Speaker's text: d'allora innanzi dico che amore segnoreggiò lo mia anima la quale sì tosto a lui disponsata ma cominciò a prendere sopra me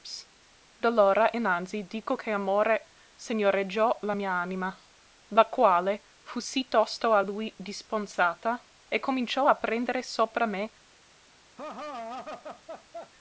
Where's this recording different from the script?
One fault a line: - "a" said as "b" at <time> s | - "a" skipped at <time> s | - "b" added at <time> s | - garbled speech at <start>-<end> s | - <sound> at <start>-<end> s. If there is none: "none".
- "lo" said as "la" at 4.0 s
- "fu" added at 6.2 s
- "ma" said as "e" at 8.9 s
- laugh at 11.6-13.1 s